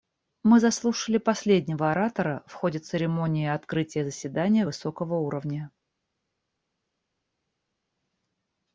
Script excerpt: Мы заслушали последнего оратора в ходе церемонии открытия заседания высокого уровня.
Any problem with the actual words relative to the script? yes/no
no